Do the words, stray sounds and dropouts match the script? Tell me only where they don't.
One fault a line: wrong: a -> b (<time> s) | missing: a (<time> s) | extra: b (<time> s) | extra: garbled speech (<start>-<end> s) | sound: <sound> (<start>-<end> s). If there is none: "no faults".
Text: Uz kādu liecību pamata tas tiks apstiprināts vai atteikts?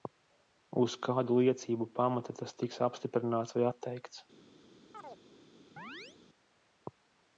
sound: chirp (4.9-5.2 s)
sound: chirp (5.8-6.2 s)